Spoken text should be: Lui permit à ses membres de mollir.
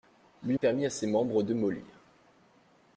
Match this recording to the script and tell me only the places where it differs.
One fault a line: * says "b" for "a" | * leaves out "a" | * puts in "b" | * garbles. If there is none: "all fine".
all fine